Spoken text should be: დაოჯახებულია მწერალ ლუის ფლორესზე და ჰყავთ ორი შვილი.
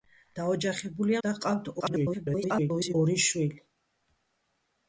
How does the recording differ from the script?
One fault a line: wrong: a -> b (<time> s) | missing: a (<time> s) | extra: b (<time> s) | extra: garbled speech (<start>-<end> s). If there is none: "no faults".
missing: მწერალ ლუის ფლორესზე (1.2 s)
extra: garbled speech (1.8-2.9 s)